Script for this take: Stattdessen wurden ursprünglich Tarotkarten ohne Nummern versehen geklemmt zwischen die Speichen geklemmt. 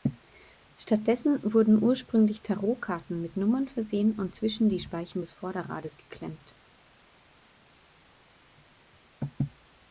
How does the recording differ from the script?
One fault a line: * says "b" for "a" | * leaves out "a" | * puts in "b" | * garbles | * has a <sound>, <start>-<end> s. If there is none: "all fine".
* says "mit" for "ohne"
* says "und" for "geklemmt"
* puts in "des Vorderrades"